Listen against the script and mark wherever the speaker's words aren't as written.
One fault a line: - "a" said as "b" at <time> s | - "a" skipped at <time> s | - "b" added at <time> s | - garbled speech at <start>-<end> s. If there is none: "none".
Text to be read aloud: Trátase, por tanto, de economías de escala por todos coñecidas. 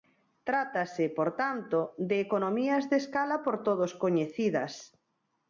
none